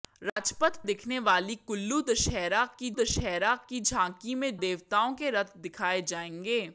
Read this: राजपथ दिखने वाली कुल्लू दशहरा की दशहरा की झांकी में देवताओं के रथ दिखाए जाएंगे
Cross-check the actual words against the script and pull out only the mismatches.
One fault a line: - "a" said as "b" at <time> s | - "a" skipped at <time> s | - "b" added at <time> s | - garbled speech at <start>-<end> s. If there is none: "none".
none